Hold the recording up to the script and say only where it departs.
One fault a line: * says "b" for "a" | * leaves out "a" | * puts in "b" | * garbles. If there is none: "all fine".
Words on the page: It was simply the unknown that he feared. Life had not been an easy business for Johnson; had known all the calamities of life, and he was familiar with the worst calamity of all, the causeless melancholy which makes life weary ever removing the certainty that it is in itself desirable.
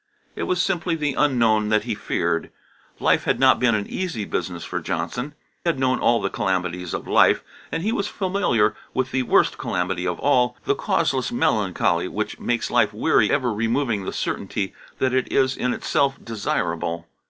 all fine